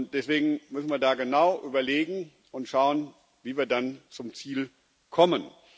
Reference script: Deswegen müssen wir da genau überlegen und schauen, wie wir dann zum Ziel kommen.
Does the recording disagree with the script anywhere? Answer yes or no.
no